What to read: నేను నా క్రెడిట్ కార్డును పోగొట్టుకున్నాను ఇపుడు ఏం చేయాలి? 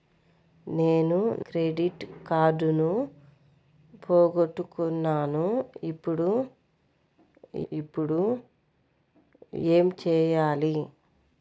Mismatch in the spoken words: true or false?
true